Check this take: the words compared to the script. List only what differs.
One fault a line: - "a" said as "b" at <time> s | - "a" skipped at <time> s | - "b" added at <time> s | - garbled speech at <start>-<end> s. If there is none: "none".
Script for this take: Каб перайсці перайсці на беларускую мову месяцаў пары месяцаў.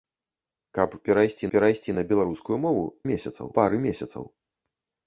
none